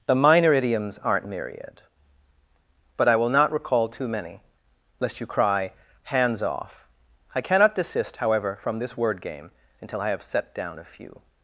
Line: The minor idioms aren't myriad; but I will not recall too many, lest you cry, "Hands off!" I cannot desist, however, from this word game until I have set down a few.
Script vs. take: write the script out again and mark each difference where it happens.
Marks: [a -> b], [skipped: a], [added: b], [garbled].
The minor idioms aren't myriad; but I will not recall too many, lest you cry, "Hands off!" I cannot desist, however, from this word game until I have set down a few.